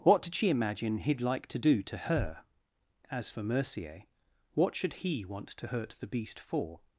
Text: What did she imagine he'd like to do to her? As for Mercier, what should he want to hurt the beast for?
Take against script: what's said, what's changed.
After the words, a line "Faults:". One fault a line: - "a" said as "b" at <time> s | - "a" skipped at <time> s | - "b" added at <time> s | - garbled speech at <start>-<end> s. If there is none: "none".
What did she imagine he'd like to do to her? As for Mercier, what should he want to hurt the beast for?
Faults:
none